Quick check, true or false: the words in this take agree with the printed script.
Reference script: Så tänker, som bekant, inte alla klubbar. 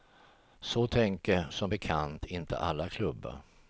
true